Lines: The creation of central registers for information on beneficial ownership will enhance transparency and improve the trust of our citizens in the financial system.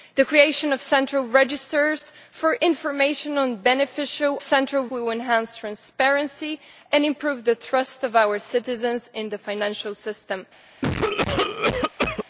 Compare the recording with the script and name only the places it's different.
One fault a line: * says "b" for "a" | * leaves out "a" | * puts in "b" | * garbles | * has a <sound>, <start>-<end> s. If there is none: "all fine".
* says "central" for "ownership"
* has a cough, 10.8-12.2 s